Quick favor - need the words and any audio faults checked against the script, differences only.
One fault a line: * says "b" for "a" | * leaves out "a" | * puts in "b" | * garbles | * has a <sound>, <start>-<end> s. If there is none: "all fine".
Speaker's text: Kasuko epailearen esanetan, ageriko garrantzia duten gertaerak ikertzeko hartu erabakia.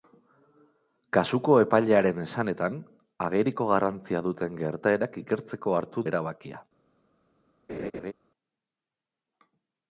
* has a laugh, 7.7-8.1 s